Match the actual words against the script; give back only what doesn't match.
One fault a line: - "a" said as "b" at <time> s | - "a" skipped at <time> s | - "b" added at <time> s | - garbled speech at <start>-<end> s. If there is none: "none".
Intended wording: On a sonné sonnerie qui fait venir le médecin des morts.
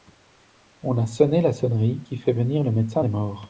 - "la" added at 1.4 s